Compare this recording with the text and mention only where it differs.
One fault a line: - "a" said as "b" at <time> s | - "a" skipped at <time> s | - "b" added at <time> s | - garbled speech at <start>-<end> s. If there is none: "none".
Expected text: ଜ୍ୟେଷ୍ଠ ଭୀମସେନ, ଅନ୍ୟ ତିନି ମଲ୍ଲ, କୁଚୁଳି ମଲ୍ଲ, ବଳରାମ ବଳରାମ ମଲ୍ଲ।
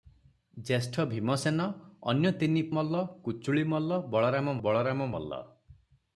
none